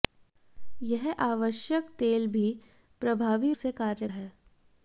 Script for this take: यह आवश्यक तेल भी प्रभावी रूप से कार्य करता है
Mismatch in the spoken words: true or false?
true